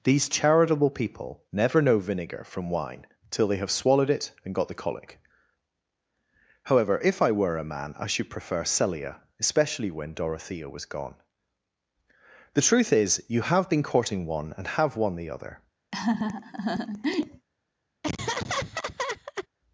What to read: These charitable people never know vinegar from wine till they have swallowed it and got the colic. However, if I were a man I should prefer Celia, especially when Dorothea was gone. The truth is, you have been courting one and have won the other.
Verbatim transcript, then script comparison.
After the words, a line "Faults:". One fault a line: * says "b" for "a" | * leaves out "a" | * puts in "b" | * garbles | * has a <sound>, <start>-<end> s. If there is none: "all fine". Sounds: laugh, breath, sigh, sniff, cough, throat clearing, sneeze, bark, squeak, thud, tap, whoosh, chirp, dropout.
These charitable people never know vinegar from wine till they have swallowed it and got the colic. However, if I were a man I should prefer Celia, especially when Dorothea was gone. The truth is, you have been courting one and have won the other.
Faults:
* has a laugh, 15.9-17.5 s
* has a laugh, 18.0-19.5 s